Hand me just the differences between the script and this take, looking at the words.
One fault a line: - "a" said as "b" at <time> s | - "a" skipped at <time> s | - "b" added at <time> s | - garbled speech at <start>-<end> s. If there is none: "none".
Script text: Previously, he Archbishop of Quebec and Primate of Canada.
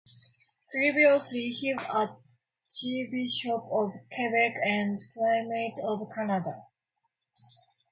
none